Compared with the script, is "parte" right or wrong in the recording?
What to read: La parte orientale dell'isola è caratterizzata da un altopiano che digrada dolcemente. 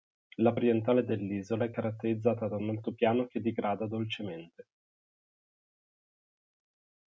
wrong